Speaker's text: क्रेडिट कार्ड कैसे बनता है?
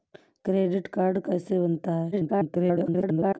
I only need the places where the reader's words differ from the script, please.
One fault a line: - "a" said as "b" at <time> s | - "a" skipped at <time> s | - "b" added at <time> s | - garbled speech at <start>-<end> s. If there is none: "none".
- garbled speech at 2.1-3.4 s